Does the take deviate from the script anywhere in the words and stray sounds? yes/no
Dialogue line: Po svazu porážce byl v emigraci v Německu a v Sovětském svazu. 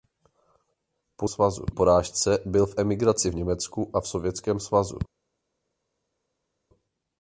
no